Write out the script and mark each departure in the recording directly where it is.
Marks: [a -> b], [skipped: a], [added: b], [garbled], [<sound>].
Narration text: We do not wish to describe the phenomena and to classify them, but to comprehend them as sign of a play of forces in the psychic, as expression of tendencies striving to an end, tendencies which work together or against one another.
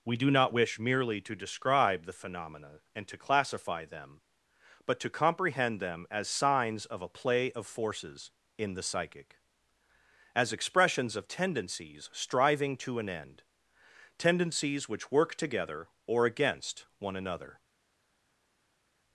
We do not wish [added: merely] to describe the phenomena and to classify them, but to comprehend them as [sign -> signs] of a play of forces in the psychic, as [expression -> expressions] of tendencies striving to an end, tendencies which work together or against one another.